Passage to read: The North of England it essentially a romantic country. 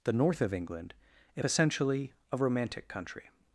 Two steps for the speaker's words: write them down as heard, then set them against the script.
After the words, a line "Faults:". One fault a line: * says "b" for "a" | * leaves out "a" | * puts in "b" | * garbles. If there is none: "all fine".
The North of England if essentially a romantic country.
Faults:
* says "if" for "it"